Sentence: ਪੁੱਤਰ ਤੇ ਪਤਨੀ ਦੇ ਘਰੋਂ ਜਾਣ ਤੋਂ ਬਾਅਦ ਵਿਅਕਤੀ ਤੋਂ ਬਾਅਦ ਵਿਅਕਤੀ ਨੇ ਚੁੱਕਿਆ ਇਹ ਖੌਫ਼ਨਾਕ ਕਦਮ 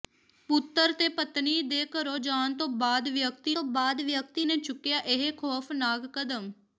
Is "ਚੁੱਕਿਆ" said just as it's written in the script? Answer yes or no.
yes